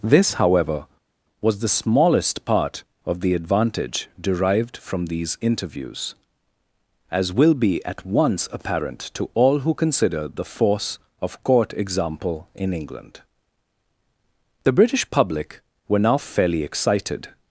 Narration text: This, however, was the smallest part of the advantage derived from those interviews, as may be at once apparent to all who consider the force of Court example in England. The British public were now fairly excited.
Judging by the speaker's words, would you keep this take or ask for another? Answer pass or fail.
fail